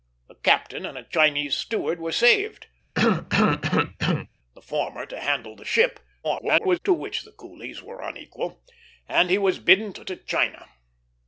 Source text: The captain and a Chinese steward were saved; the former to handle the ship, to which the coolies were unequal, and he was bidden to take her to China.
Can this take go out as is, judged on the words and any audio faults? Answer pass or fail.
fail